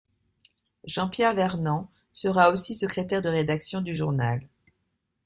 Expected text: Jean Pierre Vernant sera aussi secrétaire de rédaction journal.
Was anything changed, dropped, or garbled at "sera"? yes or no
no